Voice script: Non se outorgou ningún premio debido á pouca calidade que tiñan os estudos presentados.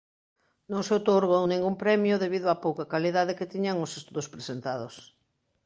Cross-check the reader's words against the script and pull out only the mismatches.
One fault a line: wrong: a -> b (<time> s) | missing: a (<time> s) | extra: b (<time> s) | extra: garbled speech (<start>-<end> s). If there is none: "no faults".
no faults